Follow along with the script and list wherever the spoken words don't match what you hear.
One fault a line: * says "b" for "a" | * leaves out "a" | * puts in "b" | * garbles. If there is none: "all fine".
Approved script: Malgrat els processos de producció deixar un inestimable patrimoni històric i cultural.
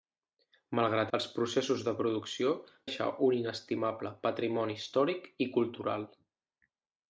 all fine